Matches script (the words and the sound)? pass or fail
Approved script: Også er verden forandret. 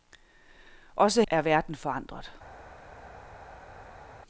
pass